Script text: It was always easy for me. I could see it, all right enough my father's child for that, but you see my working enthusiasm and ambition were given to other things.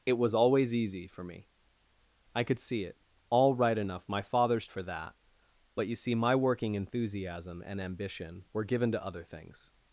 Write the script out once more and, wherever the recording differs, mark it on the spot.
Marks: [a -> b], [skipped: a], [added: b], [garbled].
It was always easy for me. I could see it, all right enough my father's [skipped: child] for that, but you see my working enthusiasm and ambition were given to other things.